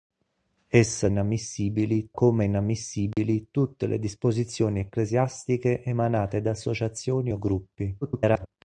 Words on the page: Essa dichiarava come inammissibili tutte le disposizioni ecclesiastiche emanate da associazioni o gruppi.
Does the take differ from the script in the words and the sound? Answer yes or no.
yes